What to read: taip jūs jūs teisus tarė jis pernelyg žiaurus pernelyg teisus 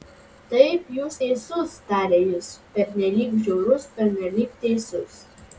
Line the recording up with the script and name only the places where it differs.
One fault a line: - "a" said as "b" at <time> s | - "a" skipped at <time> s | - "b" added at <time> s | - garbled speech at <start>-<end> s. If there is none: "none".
- "jūs" skipped at 1.2 s